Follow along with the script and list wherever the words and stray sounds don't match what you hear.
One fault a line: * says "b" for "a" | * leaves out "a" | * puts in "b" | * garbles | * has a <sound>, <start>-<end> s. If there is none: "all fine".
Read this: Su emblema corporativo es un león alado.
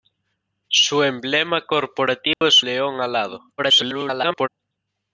* has a dropout, 2.3-2.4 s
* leaves out "un"
* garbles